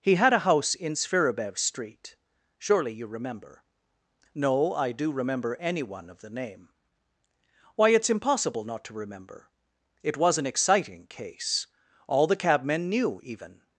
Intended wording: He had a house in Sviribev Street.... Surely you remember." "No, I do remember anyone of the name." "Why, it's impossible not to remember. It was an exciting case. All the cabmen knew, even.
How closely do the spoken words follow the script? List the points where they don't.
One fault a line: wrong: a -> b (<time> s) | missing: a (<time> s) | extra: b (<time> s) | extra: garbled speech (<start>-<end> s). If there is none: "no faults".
no faults